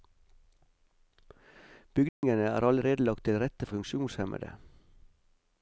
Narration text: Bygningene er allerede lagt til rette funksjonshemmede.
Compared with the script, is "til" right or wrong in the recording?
right